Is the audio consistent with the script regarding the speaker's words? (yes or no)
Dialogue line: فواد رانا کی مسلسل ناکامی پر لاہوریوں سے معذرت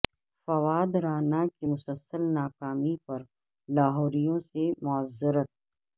yes